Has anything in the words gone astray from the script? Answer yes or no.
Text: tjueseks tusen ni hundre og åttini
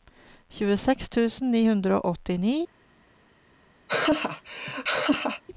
no